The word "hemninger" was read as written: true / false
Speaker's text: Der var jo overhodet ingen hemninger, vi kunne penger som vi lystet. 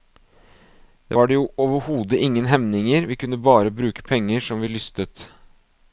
true